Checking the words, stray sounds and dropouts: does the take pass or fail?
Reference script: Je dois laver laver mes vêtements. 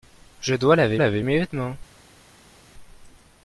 pass